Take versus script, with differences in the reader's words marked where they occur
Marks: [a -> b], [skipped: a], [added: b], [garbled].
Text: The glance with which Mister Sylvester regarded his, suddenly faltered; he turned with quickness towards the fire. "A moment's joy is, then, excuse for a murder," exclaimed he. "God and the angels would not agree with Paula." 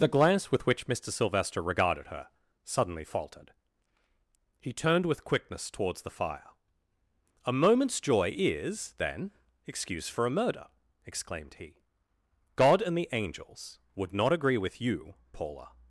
The glance with which Mister Sylvester regarded [his, -> her] suddenly faltered; he turned with quickness towards the fire. "A moment's joy is, then, excuse for a murder," exclaimed he. "God and the angels would not agree with [added: you] Paula."